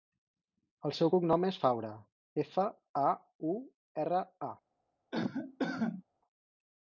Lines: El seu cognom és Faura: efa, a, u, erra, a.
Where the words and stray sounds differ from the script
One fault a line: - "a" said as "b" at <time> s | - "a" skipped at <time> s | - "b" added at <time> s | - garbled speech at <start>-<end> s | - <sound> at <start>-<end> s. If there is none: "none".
- cough at 5.1-6.0 s